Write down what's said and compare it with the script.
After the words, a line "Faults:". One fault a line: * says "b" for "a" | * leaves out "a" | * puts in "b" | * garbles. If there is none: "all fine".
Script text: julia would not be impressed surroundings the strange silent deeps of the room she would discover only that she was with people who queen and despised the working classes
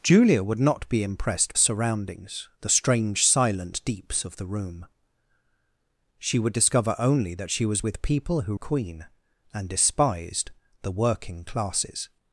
julia would not be impressed surroundings the strange silent deeps of the room she would discover only that she was with people who queen and despised the working classes
Faults:
all fine